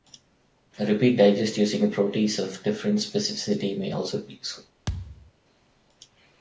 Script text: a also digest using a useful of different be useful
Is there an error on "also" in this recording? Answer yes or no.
yes